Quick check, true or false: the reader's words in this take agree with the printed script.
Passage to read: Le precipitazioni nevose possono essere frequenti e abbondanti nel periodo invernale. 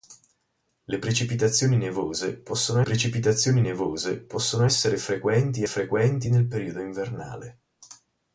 false